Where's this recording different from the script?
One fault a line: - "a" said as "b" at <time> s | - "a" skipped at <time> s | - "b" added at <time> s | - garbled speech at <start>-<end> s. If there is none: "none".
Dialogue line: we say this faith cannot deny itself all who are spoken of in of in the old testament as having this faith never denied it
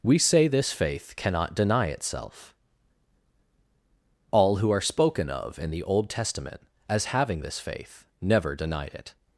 - "of in" skipped at 5.7 s